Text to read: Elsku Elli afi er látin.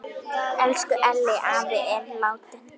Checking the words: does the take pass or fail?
pass